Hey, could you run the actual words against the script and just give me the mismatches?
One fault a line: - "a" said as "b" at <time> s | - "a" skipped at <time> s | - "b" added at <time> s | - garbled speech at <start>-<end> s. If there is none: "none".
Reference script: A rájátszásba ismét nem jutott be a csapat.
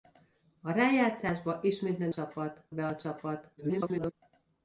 - "jutott" said as "csapat" at 2.1 s
- garbled speech at 3.6-4.1 s